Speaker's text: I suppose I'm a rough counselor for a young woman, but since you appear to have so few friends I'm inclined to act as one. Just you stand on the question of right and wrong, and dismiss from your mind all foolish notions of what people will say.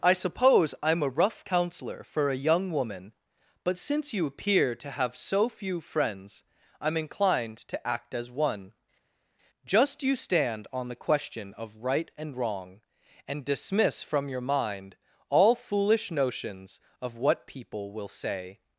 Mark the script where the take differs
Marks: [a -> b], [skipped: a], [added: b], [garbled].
I suppose I'm a rough counselor for a young woman, but since you appear to have so few friends I'm inclined to act as one. Just you stand on the question of right and wrong, and dismiss from your mind all foolish notions of what people will say.